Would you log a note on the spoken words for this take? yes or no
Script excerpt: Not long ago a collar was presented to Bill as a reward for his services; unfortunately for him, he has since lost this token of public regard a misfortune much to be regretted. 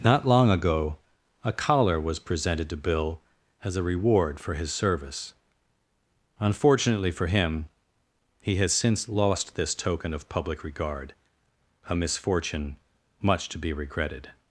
yes